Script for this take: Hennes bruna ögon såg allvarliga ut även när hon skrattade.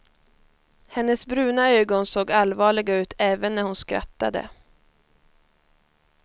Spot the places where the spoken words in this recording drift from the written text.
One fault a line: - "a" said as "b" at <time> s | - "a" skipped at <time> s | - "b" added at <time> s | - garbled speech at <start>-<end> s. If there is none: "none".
none